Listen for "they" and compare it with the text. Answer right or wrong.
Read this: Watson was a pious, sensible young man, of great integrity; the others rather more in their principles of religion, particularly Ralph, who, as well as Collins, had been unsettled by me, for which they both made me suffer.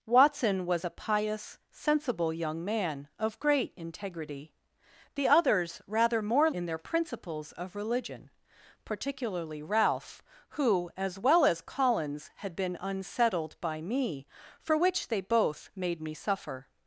right